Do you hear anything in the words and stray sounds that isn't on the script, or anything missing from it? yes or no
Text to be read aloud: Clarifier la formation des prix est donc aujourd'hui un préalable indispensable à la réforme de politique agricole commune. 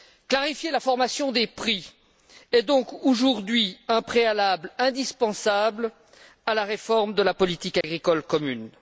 yes